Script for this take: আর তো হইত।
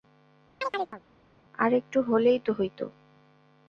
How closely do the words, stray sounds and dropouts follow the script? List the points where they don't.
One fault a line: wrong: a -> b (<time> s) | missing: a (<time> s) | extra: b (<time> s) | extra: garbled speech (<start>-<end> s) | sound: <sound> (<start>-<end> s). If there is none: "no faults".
sound: chirp (0.6-1.0 s)
extra: একটু হলেই (1.7 s)